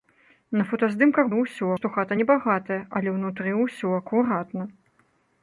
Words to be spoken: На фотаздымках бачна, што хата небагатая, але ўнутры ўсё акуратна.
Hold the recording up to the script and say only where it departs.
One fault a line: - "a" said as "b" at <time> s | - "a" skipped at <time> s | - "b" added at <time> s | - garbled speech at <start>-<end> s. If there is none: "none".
- "бачна" said as "ўсё" at 1.4 s